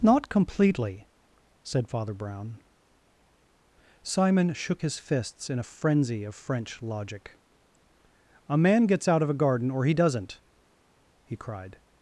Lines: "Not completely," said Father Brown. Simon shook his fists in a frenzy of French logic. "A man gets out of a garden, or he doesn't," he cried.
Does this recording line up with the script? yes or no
yes